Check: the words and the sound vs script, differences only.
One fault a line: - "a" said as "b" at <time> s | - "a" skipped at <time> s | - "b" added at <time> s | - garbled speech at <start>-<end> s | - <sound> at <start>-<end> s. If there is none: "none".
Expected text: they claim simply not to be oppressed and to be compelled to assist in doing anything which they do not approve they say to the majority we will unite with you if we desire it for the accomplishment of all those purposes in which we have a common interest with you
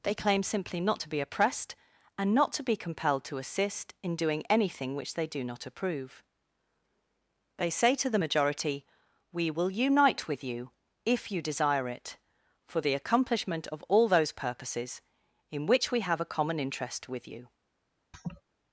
- "not" added at 2.3 s
- "we" said as "you" at 11.3 s
- laugh at 18.1-18.4 s